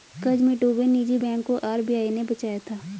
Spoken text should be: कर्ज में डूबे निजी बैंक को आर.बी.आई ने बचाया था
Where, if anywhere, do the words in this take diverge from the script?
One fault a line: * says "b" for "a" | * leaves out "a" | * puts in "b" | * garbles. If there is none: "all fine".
all fine